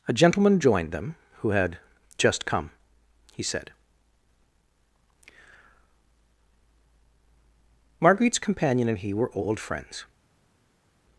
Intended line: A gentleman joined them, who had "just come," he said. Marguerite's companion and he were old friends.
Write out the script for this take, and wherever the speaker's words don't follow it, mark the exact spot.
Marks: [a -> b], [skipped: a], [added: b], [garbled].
A gentleman joined them, who had "just come," he said. Marguerite's companion and he were old friends.